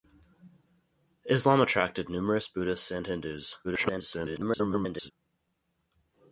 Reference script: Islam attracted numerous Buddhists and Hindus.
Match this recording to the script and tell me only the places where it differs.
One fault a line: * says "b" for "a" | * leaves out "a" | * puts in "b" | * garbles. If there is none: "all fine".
* garbles